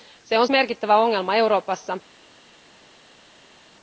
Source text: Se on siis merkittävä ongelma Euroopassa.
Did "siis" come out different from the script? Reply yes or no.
yes